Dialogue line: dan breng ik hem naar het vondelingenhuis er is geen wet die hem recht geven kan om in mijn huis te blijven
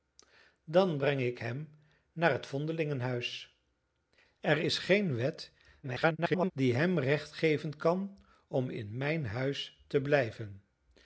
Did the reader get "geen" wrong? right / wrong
right